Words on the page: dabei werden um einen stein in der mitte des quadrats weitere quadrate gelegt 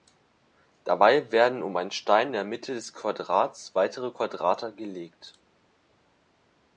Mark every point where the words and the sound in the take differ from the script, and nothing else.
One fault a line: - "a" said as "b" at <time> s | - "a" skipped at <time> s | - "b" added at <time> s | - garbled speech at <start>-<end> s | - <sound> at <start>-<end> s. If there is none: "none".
none